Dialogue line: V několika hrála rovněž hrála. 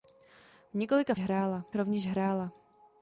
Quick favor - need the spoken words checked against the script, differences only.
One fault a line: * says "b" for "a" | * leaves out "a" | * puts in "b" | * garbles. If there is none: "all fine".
all fine